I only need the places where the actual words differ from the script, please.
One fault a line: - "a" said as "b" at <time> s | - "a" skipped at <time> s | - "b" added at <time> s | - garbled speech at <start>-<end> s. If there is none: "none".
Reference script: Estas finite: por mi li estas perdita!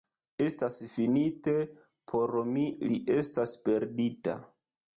none